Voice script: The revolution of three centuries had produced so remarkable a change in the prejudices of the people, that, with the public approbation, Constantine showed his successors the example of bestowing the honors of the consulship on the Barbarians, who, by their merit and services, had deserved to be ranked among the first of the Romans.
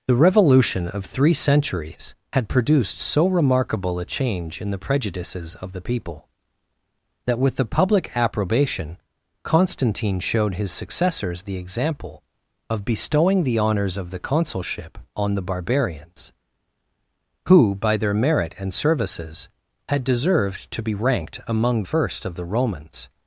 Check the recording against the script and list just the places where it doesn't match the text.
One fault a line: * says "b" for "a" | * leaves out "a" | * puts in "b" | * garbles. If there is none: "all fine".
* leaves out "the"